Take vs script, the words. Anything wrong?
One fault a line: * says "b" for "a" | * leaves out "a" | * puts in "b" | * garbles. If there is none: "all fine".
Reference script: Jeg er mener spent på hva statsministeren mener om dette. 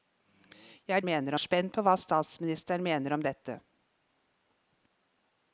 all fine